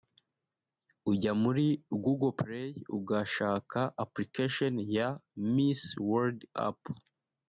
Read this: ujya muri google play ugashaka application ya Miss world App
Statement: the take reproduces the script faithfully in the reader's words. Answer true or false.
true